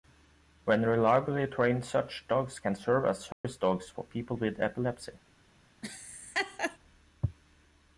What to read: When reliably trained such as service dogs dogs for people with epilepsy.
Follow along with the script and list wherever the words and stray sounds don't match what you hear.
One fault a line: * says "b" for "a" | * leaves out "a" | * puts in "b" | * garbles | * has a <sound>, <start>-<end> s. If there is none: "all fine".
* puts in "dogs can serve"
* has a dropout, 3.3-3.4 s
* leaves out "dogs"
* has a laugh, 5.8-6.8 s